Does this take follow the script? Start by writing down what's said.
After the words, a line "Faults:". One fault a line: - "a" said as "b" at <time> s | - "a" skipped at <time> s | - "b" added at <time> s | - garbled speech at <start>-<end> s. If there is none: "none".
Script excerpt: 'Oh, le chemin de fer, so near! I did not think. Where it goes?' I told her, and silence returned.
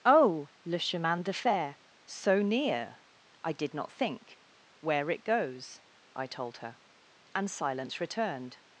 'Oh, le chemin de fer, so near! I did not think. Where it goes?' I told her, and silence returned.
Faults:
none